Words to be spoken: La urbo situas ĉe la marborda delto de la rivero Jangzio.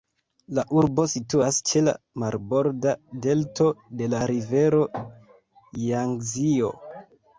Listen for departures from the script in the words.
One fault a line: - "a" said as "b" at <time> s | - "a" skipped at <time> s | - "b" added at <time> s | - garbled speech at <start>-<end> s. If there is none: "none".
none